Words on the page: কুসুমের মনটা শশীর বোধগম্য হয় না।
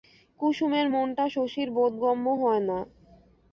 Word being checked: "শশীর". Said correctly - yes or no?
yes